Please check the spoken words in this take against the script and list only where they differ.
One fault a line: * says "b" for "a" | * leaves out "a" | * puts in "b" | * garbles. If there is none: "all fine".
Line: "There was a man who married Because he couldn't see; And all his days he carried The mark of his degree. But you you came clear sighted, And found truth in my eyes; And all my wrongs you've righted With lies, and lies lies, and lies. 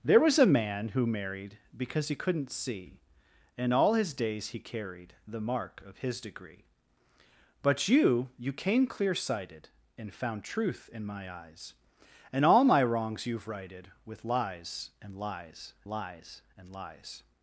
all fine